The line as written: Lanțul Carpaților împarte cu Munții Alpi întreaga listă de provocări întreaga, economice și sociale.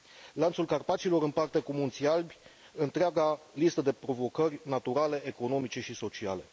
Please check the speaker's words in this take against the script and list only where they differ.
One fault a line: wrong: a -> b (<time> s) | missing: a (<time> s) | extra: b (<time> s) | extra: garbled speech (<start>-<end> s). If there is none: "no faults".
wrong: întreaga -> naturale (4.6 s)